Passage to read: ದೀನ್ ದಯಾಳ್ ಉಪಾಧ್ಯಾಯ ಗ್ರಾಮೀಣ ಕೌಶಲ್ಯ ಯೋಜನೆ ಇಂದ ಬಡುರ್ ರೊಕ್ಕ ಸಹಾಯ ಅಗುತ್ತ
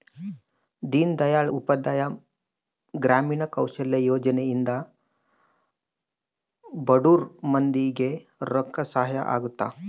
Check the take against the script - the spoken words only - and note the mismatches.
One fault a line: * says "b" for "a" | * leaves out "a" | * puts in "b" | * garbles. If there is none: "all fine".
* puts in "ಮಂದಿ ಗೆ"